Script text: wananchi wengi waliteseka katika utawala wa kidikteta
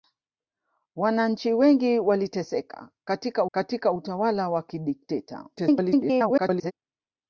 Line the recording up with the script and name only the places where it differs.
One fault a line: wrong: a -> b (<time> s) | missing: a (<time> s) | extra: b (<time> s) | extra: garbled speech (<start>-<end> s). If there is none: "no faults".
extra: katika (3.5 s)
extra: garbled speech (5.6-6.7 s)